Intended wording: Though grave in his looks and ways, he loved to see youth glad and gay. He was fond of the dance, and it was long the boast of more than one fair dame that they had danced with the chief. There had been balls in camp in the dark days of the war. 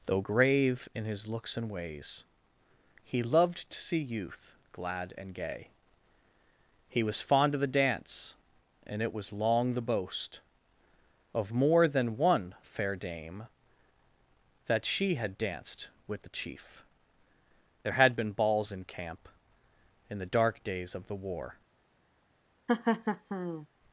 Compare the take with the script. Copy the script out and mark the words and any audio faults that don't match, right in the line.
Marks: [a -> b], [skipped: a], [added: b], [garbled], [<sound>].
Though grave in his looks and ways, he loved to see youth glad and gay. He was fond of the dance, and it was long the boast of more than one fair dame that [they -> she] had danced with the chief. There had been balls in camp in the dark days of the war. [laugh]